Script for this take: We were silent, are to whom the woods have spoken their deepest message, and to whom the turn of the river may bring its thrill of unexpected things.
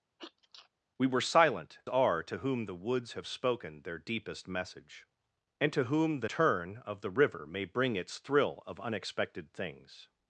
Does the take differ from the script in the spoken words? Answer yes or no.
no